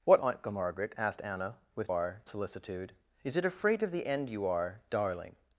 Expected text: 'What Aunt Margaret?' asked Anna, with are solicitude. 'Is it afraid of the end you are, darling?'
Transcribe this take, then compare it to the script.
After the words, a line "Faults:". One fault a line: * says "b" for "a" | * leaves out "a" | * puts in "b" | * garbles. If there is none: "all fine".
'What Aunt Margaret?' asked Anna, with are solicitude. 'Is it afraid of the end you are, darling?'
Faults:
all fine